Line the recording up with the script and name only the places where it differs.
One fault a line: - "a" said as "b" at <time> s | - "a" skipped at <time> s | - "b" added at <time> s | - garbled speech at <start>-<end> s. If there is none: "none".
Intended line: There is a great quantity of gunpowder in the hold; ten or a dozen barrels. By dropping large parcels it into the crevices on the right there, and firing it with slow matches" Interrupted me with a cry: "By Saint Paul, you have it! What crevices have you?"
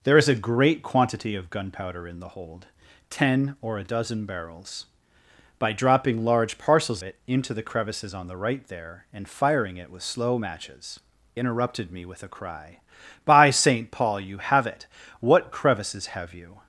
none